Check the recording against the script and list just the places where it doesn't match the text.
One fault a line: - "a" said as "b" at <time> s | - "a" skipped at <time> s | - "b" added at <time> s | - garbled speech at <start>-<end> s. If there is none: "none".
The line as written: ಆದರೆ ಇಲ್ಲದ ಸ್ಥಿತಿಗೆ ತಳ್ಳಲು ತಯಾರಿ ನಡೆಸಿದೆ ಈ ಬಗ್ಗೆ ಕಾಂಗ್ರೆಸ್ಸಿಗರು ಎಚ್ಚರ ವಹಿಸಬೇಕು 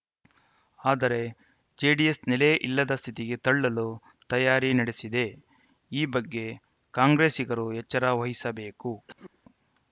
- "ಜೆಡಿಎಸ್ ನೆಲೆ" added at 1.8 s